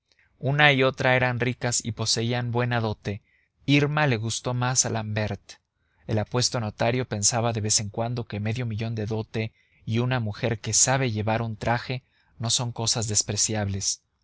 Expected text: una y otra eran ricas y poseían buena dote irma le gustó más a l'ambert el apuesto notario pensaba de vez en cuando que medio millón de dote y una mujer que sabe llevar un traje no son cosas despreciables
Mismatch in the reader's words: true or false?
false